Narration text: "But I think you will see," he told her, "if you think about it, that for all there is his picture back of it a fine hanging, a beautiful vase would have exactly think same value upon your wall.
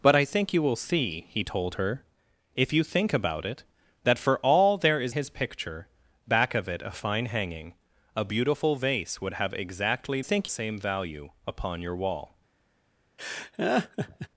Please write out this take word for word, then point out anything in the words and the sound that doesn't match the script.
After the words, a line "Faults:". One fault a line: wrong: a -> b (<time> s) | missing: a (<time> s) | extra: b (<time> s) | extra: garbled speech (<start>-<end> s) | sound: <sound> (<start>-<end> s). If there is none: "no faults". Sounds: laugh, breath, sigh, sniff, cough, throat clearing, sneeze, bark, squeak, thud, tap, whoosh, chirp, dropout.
"But I think you will see," he told her, "if you think about it, that for all there is his picture back of it a fine hanging, a beautiful vase would have exactly think same value upon your wall.
Faults:
sound: laugh (13.2-14.3 s)